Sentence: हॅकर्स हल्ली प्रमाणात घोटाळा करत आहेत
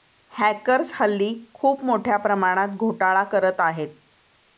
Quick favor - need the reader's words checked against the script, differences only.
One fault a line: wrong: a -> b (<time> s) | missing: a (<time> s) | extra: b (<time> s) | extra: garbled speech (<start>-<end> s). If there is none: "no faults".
extra: खूप मोठ्या (1.5 s)